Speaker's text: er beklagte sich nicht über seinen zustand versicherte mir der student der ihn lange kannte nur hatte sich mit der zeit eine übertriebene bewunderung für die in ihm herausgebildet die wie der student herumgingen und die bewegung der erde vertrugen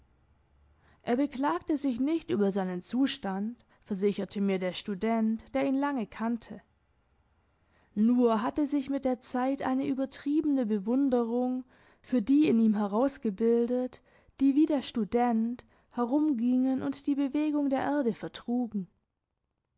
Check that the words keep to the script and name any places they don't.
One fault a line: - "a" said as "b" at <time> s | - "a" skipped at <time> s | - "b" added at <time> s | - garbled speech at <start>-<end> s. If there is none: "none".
none